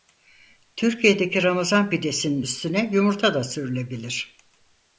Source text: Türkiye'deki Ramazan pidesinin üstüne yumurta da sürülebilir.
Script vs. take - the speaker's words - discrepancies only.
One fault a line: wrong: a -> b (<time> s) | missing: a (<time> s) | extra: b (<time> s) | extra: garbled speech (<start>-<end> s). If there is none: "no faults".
no faults